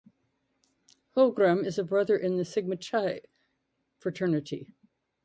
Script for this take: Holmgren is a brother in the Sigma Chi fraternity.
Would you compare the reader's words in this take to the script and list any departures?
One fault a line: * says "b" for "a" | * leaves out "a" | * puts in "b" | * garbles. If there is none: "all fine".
all fine